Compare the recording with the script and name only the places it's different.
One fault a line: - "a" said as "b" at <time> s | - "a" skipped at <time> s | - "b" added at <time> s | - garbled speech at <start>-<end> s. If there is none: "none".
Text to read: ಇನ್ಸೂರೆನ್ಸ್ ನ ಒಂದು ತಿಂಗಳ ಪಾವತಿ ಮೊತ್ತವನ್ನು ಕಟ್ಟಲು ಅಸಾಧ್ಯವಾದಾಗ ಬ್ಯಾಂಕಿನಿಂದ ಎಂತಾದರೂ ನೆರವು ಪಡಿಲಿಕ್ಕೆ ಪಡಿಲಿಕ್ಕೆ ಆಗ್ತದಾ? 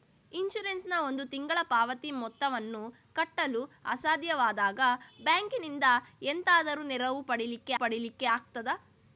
none